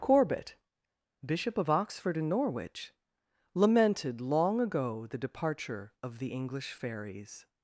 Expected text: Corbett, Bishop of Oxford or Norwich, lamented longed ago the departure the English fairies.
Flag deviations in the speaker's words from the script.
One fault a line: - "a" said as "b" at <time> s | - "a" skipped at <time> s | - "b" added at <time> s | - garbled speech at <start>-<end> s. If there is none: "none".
- "or" said as "and" at 2.2 s
- "longed" said as "long" at 4.2 s
- "of" added at 6.0 s